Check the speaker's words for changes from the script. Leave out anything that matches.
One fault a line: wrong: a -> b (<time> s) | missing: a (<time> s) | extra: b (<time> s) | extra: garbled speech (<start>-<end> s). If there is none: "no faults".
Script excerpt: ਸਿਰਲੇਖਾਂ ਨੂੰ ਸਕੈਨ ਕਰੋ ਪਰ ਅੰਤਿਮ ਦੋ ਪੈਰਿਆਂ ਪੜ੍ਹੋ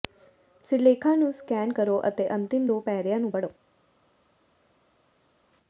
wrong: ਪਰ -> ਅਤੇ (2.1 s)
extra: ਨੂੰ (3.2 s)